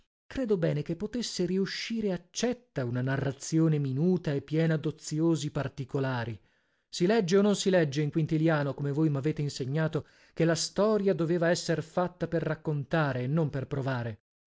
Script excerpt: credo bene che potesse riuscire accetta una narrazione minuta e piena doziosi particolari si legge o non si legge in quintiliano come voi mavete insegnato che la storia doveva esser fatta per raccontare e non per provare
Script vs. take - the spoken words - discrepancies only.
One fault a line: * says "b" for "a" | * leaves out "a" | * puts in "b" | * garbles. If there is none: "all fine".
all fine